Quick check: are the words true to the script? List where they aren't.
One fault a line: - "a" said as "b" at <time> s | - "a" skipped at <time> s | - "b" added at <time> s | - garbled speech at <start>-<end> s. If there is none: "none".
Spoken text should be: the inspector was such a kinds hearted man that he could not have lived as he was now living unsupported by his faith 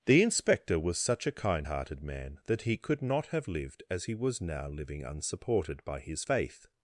- "kinds" said as "kind" at 1.3 s